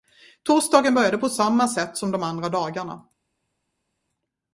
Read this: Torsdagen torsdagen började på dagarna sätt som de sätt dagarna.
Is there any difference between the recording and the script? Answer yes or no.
yes